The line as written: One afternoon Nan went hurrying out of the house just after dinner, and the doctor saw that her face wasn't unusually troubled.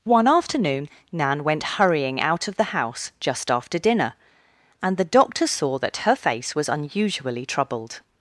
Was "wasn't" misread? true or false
true